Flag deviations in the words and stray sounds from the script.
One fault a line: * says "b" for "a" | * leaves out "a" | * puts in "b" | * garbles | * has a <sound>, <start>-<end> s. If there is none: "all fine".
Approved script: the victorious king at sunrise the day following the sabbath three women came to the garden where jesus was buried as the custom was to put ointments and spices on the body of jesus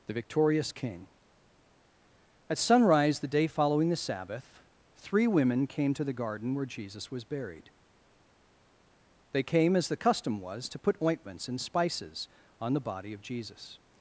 * puts in "they came"